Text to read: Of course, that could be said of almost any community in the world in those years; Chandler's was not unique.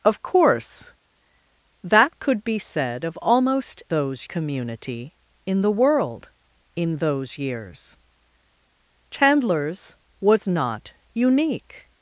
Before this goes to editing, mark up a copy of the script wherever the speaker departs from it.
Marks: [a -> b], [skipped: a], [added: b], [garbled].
Of course, that could be said of almost [any -> those] community in the world in those years; Chandler's was not unique.